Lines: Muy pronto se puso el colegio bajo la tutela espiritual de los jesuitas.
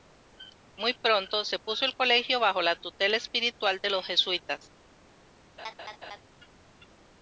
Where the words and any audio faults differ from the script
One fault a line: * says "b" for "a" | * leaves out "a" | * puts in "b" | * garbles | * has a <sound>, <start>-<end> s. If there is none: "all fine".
* has a laugh, 5.6-6.2 s